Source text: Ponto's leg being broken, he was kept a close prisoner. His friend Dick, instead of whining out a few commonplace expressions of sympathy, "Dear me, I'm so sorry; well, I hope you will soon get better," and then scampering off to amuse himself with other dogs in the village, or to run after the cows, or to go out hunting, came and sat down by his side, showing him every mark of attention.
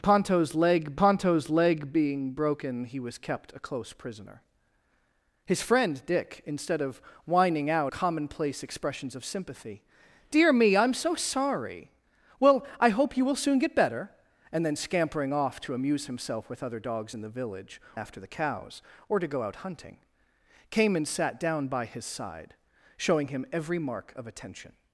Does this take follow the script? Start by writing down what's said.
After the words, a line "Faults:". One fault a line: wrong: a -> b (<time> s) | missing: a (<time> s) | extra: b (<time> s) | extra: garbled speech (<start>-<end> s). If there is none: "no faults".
Ponto's leg ponto's leg being broken, he was kept a close prisoner. His friend Dick, instead of whining out commonplace expressions of sympathy, "Dear me, I'm so sorry; well, I hope you will soon get better," and then scampering off to amuse himself with other dogs in the village, after the cows, or to go out hunting, came and sat down by his side, showing him every mark of attention.
Faults:
extra: ponto's leg (0.9 s)
missing: a few (7.9 s)
missing: or to run (17.8 s)